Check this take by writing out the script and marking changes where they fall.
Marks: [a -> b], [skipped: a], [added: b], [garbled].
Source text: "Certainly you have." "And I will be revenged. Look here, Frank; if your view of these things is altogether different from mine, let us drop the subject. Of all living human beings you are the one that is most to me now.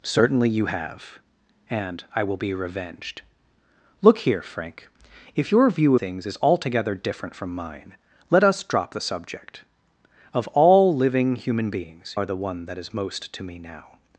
"Certainly you have." "And I will be revenged. Look here, Frank; if your view [skipped: of these] things is altogether different from mine, let us drop the subject. Of all living human beings [skipped: you] are the one that is most to me now.